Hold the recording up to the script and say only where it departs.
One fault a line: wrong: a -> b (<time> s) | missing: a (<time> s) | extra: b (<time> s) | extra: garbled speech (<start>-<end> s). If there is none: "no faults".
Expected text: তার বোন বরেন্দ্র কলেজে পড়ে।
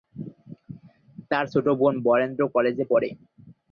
extra: ছোট (1.5 s)